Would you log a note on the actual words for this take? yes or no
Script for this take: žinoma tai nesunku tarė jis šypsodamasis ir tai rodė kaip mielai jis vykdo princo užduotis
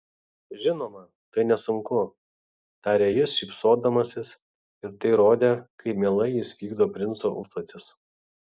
no